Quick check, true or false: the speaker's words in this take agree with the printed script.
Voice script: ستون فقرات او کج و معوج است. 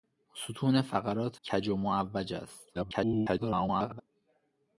false